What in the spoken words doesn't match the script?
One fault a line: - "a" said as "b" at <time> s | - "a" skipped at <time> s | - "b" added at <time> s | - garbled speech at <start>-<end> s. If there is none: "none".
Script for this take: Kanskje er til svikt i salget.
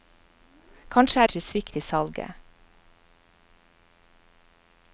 none